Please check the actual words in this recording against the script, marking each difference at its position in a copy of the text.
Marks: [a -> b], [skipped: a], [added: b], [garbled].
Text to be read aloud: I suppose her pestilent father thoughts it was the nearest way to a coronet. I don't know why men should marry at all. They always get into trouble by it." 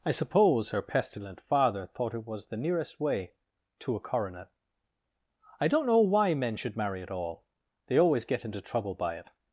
I suppose her pestilent father [thoughts -> thought] it was the nearest way to a coronet. I don't know why men should marry at all. They always get into trouble by it."